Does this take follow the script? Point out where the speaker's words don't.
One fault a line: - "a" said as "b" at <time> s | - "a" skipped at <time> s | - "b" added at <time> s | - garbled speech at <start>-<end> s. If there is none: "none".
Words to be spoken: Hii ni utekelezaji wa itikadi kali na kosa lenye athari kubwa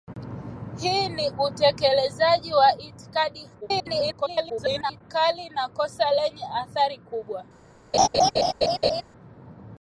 - garbled speech at 3.6-5.0 s